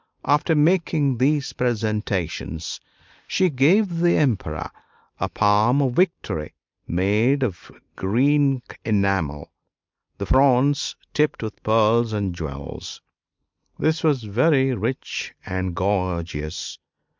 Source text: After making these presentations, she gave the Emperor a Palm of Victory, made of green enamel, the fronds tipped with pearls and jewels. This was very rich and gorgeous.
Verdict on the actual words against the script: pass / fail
pass